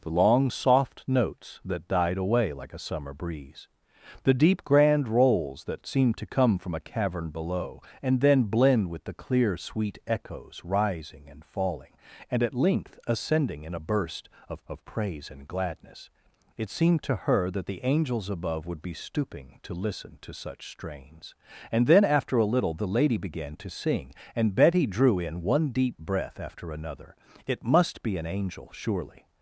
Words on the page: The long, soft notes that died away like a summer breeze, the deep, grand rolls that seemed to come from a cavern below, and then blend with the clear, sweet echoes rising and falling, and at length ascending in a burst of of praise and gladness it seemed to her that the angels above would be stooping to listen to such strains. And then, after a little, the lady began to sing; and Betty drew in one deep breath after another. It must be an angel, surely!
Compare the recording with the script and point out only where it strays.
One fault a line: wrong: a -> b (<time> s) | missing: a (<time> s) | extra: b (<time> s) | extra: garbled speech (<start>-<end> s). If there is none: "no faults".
no faults